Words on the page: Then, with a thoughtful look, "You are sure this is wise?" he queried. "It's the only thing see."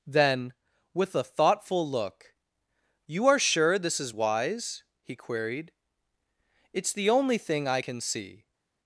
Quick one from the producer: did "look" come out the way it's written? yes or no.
yes